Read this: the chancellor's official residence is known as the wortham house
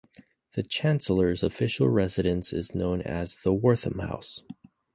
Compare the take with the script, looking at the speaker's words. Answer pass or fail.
pass